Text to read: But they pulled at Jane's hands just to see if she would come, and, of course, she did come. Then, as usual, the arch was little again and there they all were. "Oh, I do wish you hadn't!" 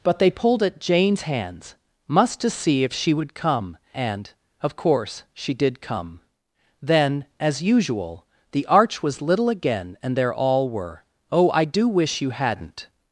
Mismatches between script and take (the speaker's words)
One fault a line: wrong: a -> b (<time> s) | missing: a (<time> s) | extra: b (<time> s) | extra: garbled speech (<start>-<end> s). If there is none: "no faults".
wrong: just -> must (2.1 s)
missing: they (10.3 s)